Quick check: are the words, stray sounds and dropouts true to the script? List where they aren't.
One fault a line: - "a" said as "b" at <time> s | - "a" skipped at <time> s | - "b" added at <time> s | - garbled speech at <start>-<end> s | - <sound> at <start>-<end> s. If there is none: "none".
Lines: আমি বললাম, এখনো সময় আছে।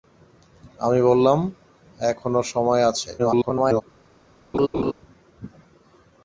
- garbled speech at 3.2-3.8 s
- laugh at 4.5-4.9 s